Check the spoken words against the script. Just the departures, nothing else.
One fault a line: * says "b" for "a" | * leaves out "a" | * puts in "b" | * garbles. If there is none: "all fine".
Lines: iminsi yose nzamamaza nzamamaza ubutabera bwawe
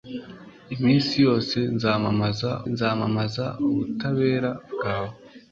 all fine